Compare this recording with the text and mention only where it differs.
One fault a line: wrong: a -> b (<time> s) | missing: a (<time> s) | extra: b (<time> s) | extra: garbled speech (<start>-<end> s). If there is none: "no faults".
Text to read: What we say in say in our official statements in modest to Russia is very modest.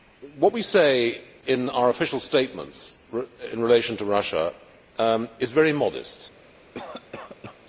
missing: say in (1.7 s)
wrong: modest -> relation (3.6 s)